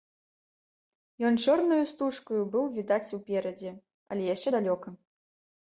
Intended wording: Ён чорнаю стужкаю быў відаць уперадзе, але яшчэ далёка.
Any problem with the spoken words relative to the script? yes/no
no